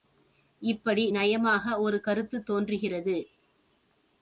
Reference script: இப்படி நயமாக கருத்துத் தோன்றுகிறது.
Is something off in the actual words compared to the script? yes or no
yes